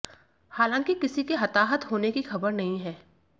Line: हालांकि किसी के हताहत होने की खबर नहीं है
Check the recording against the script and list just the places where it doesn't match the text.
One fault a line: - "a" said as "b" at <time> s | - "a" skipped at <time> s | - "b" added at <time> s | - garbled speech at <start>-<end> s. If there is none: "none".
none